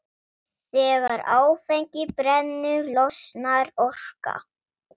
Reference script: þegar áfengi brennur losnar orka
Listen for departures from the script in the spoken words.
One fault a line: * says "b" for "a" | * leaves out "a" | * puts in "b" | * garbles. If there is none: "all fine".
all fine